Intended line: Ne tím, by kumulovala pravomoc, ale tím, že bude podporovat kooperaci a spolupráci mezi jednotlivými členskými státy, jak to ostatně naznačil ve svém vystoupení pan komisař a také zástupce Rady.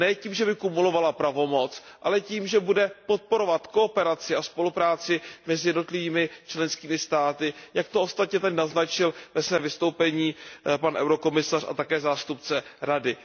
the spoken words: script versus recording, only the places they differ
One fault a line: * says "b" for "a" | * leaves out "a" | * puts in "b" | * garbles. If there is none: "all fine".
* puts in "že"
* puts in "tady"